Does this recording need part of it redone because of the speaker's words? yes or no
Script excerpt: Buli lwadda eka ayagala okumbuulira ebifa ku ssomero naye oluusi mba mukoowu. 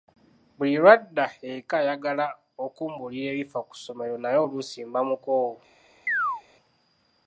no